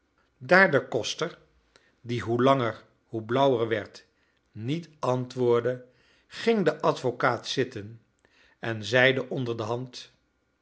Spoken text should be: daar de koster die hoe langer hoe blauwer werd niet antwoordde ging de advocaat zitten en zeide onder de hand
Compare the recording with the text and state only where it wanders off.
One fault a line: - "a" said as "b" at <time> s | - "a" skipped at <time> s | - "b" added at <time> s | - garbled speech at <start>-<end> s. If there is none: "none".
none